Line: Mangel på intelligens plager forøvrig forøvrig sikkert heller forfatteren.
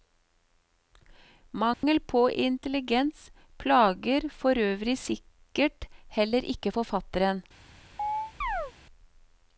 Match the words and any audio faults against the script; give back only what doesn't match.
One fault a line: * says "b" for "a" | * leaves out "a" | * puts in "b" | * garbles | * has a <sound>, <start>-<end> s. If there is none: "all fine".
* has a dropout, 1.7-1.8 s
* leaves out "forøvrig"
* puts in "ikke"
* has a chirp, 8.0-8.7 s